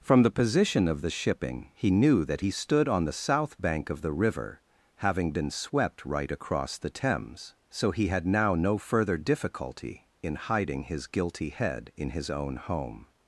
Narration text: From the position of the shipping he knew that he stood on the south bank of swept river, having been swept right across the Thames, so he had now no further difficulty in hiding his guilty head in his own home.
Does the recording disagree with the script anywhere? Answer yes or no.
yes